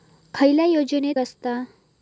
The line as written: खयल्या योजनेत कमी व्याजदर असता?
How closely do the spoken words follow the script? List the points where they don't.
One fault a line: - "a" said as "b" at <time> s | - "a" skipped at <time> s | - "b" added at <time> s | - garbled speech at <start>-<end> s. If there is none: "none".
- "कमी व्याजदर" skipped at 1.1 s